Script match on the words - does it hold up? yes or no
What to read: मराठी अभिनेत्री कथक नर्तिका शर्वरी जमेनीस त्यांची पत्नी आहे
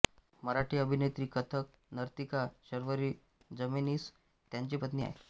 yes